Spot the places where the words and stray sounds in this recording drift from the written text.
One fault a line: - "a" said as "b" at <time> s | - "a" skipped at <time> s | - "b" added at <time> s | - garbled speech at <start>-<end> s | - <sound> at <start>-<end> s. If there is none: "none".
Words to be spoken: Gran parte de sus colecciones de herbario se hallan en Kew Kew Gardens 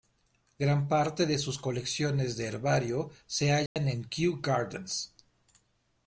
- dropout at 3.7-3.8 s
- "Kew" skipped at 4.4 s